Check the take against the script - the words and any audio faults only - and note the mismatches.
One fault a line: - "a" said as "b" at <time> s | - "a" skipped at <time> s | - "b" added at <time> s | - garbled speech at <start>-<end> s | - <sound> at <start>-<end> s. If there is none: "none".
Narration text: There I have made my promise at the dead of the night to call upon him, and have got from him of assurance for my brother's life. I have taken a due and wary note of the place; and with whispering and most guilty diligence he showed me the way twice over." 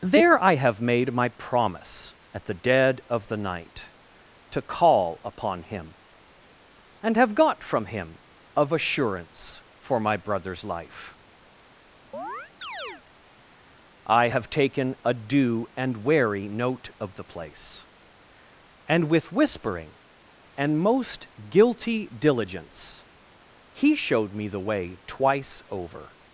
- chirp at 12.1-13.0 s